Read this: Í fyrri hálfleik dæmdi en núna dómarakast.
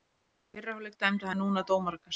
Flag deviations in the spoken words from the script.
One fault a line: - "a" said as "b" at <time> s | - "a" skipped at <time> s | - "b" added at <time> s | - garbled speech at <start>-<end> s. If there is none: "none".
none